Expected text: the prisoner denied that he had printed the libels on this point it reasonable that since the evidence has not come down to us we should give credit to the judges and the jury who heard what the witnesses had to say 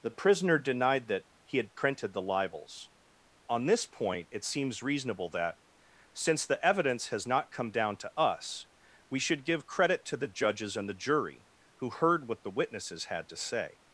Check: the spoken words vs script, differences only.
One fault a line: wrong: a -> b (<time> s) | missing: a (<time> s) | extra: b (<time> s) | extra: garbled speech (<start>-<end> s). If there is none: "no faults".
extra: seems (4.4 s)